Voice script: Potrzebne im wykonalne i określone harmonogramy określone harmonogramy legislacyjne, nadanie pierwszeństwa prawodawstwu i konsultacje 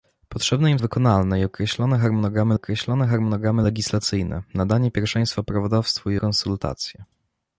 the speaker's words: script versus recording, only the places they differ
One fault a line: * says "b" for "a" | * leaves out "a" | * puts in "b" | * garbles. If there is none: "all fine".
all fine